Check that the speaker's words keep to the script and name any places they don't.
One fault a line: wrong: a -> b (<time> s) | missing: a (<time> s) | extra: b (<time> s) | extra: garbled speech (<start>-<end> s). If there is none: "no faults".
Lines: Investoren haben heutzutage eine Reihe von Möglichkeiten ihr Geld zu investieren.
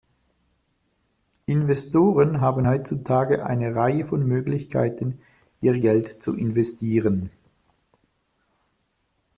no faults